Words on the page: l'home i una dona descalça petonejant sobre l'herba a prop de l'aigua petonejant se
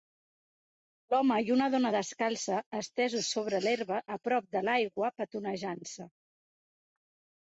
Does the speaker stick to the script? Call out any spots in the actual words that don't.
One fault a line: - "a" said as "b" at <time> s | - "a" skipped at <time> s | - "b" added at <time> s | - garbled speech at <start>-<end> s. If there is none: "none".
- "petonejant" said as "estesos" at 2.8 s